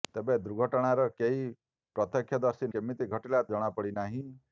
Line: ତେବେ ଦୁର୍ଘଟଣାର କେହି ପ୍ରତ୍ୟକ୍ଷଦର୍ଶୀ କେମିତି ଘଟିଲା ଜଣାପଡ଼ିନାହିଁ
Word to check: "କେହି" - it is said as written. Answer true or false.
true